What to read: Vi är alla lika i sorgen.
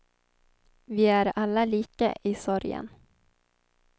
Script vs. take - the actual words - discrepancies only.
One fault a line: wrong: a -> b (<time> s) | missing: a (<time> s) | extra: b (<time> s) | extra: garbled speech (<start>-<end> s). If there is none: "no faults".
no faults